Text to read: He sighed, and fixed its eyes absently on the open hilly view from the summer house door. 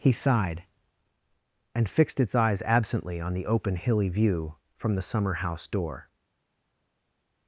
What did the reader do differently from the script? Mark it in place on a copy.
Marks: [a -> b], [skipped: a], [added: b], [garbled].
He sighed, and fixed its eyes absently on the open hilly view from the summer house door.